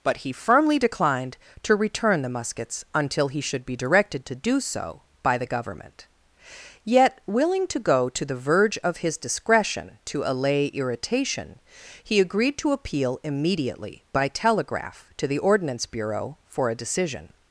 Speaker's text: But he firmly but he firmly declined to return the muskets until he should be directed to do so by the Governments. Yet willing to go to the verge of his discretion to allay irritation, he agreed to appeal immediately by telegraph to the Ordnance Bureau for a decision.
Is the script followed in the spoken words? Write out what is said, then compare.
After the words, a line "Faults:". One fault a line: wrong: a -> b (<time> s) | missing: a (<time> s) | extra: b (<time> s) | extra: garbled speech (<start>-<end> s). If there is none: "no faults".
But he firmly declined to return the muskets until he should be directed to do so by the Government. Yet willing to go to the verge of his discretion to allay irritation, he agreed to appeal immediately by telegraph to the Ordnance Bureau for a decision.
Faults:
missing: but he firmly (0.8 s)
wrong: Governments -> Government (5.5 s)